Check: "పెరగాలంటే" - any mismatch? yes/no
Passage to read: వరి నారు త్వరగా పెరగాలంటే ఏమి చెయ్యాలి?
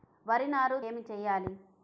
yes